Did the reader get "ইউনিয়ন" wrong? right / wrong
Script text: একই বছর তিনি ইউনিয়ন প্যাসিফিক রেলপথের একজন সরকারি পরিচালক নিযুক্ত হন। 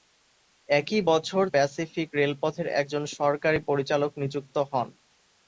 wrong